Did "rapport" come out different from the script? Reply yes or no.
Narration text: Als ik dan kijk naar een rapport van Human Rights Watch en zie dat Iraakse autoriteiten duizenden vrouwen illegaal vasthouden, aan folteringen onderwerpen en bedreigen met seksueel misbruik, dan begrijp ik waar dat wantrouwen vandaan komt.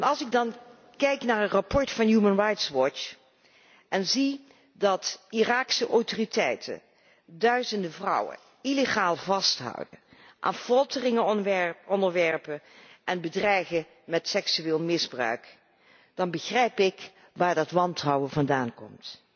no